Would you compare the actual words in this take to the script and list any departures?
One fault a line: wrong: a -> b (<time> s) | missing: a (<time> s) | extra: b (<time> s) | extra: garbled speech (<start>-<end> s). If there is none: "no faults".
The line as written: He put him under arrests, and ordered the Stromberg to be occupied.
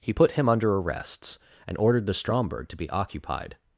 no faults